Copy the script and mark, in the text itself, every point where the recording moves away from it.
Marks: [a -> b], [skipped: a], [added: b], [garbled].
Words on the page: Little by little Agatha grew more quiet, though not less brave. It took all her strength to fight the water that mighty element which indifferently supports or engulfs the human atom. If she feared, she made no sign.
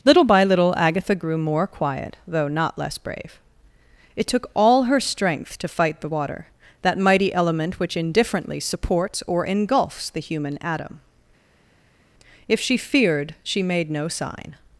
Little by little Agatha grew more quiet, though not less brave. It took all her strength to fight the water that mighty element which indifferently supports or engulfs the human atom. If she feared, she made no sign.